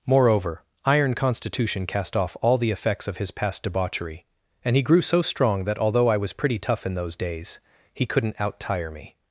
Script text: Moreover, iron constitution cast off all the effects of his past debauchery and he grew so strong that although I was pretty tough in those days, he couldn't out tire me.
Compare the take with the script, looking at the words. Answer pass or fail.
pass